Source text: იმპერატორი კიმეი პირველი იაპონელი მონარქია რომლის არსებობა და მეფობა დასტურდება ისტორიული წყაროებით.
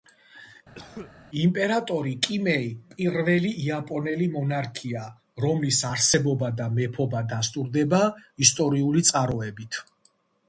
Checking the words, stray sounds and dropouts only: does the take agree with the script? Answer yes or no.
no